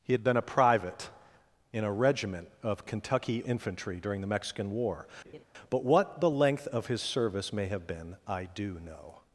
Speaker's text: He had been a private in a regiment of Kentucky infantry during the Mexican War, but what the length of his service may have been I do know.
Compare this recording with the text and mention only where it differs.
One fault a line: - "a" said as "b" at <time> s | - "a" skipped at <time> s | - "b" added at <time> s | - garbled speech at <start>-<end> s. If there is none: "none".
none